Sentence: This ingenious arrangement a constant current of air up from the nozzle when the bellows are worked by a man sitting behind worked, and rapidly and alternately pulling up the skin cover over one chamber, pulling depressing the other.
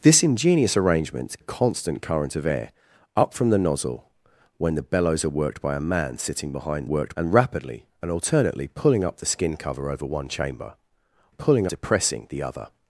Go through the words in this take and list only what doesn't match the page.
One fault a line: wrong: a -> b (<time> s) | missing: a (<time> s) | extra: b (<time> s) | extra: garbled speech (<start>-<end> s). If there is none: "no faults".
no faults